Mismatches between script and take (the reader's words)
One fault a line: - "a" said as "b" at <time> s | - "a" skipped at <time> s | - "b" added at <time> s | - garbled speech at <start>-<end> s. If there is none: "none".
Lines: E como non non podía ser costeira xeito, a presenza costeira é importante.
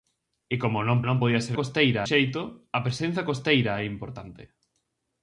none